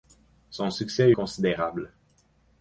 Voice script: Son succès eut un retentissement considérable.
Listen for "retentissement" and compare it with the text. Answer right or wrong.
wrong